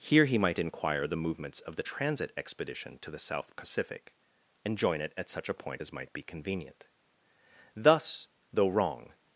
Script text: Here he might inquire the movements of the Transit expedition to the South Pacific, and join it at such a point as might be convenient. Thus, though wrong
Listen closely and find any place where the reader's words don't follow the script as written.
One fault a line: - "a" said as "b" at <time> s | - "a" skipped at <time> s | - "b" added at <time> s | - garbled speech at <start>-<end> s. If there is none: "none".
none